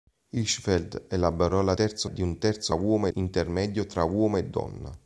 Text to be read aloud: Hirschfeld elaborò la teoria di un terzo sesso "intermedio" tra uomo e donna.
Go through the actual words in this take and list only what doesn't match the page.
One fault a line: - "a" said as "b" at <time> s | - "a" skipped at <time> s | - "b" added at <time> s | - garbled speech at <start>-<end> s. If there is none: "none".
- "teoria" said as "terzo" at 1.7 s
- "sesso" said as "uomo" at 2.7 s